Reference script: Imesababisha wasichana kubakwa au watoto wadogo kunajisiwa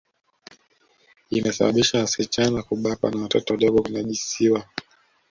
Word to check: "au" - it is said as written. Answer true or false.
false